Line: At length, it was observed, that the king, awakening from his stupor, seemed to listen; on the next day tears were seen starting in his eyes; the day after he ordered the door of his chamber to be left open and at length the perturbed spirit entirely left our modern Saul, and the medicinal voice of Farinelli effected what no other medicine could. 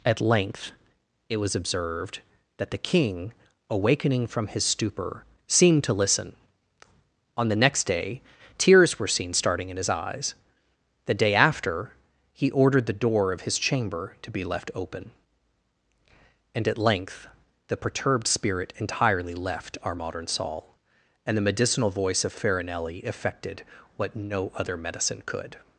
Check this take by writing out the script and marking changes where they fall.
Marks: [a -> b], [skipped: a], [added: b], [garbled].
At length, it was observed, that the king, awakening from his stupor, seemed to listen; on the next day tears were seen starting in his eyes; the day after he ordered the door of his chamber to be left open and at length the perturbed spirit entirely left our modern Saul, and the medicinal voice of Farinelli effected what no other medicine could.